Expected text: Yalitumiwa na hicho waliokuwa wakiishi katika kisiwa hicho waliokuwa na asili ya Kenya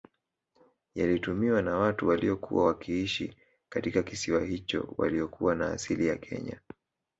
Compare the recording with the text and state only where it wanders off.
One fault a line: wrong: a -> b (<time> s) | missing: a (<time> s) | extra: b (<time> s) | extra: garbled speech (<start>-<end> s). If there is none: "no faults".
wrong: hicho -> watu (1.8 s)